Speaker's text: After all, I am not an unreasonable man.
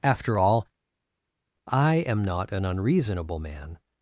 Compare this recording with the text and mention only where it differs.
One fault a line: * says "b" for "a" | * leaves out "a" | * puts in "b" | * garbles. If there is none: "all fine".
all fine